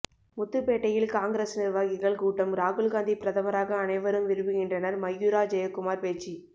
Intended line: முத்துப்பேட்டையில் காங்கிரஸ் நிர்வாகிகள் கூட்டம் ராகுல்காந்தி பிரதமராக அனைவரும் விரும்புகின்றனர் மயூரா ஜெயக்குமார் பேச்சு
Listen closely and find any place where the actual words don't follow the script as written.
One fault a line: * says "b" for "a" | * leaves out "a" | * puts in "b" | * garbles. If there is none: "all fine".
all fine